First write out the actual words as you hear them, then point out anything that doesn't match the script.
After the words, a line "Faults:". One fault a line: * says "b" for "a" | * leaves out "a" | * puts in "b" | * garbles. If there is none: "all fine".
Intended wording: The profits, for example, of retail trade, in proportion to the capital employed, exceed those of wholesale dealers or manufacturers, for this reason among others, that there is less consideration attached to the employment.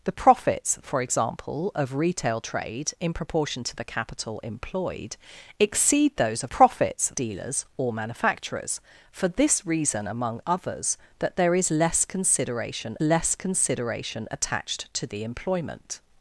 The profits, for example, of retail trade, in proportion to the capital employed, exceed those of profits dealers or manufacturers, for this reason among others, that there is less consideration less consideration attached to the employment.
Faults:
* says "profits" for "wholesale"
* puts in "less consideration"